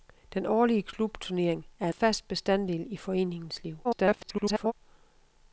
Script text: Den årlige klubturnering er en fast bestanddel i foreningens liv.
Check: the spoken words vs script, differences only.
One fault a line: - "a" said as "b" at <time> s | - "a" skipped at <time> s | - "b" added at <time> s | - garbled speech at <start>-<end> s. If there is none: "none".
- "en" skipped at 1.9 s
- garbled speech at 3.8-4.7 s